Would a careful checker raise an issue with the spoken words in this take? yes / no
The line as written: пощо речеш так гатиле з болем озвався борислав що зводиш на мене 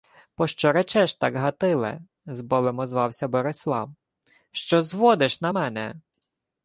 no